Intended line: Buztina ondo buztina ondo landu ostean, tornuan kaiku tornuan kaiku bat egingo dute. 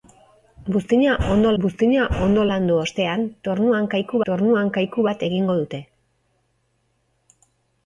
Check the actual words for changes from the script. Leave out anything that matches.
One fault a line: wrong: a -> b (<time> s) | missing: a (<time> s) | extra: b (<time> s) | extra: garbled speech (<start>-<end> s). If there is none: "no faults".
no faults